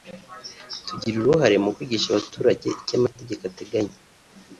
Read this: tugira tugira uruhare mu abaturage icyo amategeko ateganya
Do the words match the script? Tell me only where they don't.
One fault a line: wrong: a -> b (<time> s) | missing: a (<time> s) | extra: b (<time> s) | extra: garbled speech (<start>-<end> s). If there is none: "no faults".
missing: tugira (1.1 s)
extra: kwigisha (1.7 s)